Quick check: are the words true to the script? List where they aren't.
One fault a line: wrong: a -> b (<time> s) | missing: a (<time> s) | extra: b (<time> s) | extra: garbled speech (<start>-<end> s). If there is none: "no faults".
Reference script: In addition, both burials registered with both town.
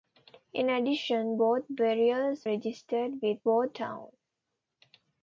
no faults